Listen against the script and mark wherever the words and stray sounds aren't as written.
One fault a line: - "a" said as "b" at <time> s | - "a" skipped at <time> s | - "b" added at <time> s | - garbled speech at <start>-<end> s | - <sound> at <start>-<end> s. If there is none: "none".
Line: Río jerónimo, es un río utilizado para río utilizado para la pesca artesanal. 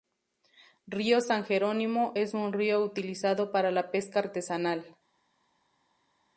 - "san" added at 1.2 s
- "río utilizado para" skipped at 3.7 s